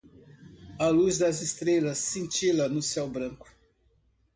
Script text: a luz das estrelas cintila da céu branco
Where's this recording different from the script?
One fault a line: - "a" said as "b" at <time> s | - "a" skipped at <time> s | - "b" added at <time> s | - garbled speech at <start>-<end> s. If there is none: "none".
- "da" said as "no" at 2.7 s